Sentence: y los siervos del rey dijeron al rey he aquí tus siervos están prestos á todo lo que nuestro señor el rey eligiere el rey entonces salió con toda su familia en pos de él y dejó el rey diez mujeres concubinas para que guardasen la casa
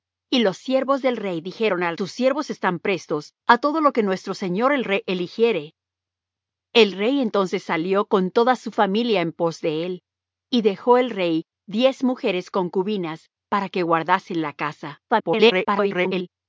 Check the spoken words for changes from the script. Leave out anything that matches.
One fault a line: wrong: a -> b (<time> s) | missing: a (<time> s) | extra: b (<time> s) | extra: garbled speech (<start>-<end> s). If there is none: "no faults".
missing: rey he aquí (2.0 s)
extra: garbled speech (15.1-16.3 s)